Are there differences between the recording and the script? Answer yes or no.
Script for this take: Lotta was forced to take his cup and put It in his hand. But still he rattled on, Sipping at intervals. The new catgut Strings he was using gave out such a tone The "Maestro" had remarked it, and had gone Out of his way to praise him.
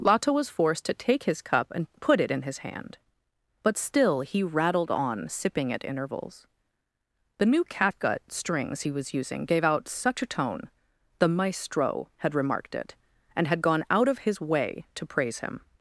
no